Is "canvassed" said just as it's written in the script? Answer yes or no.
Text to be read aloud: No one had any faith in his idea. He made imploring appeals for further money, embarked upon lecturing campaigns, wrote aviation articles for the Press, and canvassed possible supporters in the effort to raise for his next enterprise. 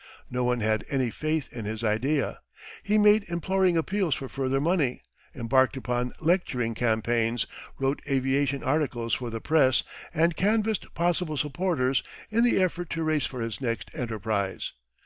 yes